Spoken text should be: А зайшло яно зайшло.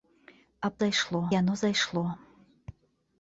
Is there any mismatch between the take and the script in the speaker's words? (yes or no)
no